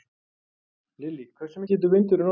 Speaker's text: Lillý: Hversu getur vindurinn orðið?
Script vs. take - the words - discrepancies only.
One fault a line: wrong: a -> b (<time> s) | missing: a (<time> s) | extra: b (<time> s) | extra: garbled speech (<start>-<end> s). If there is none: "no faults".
no faults